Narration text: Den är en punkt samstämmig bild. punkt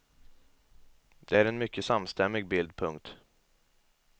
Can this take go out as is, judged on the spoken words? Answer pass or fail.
fail